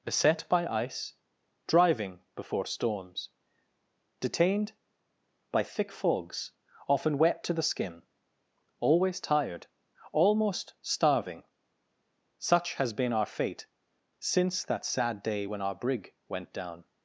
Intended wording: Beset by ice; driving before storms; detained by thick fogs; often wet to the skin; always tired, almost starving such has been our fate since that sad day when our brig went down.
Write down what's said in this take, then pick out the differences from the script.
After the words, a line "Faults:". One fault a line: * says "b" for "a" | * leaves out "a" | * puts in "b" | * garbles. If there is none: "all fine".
Beset by ice; driving before storms; detained by thick fogs; often wet to the skin; always tired, almost starving such has been our fate since that sad day when our brig went down.
Faults:
all fine